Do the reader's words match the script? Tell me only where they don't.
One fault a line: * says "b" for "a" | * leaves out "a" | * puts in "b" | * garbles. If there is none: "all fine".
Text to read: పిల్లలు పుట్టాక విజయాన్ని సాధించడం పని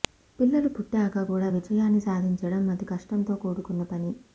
* puts in "కూడా"
* puts in "అతి కష్టంతో కూడుకున్న"